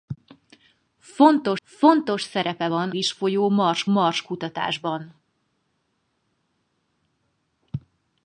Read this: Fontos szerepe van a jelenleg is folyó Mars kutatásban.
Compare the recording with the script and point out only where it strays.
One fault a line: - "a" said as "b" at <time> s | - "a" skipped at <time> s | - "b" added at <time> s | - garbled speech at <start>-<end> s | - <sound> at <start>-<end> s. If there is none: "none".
- "fontos" added at 1.6 s
- "a jelenleg" skipped at 2.9 s
- "Mars" added at 3.9 s